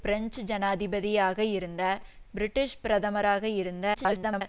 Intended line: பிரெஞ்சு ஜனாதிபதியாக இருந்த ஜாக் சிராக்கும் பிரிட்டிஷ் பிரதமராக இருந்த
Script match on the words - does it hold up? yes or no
no